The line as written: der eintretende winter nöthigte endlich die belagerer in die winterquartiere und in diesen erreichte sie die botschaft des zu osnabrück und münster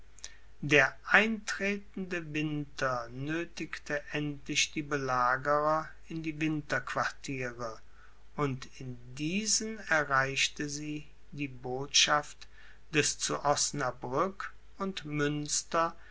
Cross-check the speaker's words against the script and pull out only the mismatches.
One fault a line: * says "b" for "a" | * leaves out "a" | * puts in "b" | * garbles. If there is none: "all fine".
all fine